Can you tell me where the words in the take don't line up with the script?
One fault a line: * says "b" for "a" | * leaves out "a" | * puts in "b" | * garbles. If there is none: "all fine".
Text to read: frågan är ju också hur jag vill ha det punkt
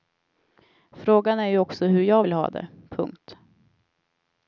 all fine